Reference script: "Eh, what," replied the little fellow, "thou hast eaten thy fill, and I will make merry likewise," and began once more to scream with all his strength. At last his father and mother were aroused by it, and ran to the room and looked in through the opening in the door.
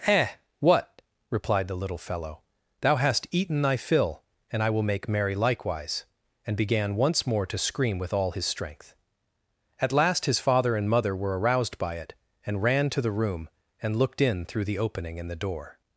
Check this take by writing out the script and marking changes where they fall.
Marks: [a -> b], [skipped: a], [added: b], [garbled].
"Eh, what," replied the little fellow, "thou hast eaten thy fill, and I will make merry likewise," and began once more to scream with all his strength. At last his father and mother were aroused by it, and ran to the room and looked in through the opening in the door.